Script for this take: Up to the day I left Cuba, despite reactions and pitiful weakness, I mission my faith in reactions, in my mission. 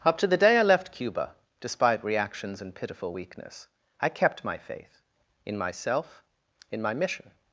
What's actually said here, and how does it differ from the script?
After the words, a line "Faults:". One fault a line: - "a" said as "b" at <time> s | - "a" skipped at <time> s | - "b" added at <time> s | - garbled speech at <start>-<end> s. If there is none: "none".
Up to the day I left Cuba, despite reactions and pitiful weakness, I kept my faith in myself, in my mission.
Faults:
- "mission" said as "kept" at 4.1 s
- "reactions" said as "myself" at 5.6 s